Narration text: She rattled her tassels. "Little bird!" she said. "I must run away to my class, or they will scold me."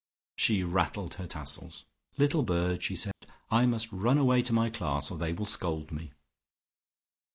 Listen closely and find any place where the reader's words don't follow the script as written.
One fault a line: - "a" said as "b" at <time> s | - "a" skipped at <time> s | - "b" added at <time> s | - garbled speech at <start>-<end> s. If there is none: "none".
none